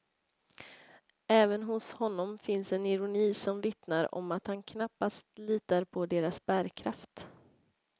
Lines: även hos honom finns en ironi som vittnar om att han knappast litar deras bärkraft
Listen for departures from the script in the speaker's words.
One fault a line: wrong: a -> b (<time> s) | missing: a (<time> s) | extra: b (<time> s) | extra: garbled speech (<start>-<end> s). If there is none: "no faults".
extra: på (5.8 s)